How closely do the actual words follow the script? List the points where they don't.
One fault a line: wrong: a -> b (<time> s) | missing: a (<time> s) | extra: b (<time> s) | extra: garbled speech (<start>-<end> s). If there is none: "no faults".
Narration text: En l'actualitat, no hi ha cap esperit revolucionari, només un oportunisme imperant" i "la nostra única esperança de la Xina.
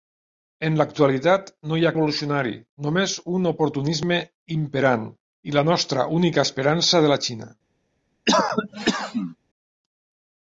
missing: cap esperit (1.9 s)